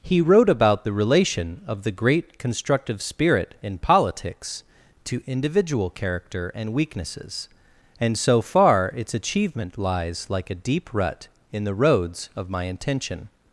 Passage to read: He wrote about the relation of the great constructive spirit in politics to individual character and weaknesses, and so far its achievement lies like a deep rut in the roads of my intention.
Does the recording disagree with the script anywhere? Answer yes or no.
no